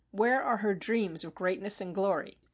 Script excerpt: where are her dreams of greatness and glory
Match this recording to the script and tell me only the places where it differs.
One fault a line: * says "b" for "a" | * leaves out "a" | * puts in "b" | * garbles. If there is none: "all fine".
all fine